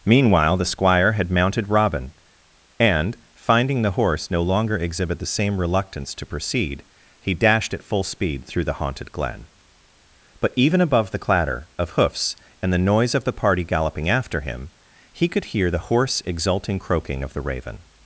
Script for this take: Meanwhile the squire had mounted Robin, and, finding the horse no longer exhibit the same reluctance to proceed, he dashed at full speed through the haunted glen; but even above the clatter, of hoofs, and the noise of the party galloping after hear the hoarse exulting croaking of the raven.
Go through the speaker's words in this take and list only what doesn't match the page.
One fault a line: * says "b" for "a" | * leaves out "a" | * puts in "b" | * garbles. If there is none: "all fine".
* puts in "him he could"